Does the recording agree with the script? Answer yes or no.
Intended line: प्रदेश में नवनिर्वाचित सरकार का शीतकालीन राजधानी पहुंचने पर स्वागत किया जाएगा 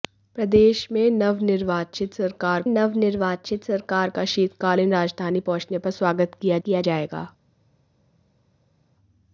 no